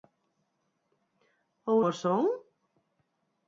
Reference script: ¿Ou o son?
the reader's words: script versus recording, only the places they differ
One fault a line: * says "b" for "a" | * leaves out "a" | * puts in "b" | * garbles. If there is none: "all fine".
all fine